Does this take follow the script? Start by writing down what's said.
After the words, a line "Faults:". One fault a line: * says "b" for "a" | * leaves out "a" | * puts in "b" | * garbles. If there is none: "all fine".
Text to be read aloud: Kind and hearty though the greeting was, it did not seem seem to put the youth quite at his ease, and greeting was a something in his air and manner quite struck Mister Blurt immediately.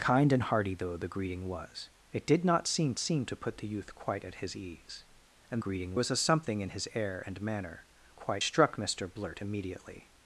Kind and hearty though the greeting was, it did not seem seem to put the youth quite at his ease, and greeting was a something in his air and manner quite struck Mister Blurt immediately.
Faults:
all fine